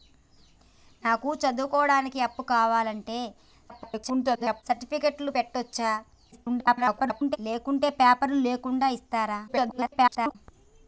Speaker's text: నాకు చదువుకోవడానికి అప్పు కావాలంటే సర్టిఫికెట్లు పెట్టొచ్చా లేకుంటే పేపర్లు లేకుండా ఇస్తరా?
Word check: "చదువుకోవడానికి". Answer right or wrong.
right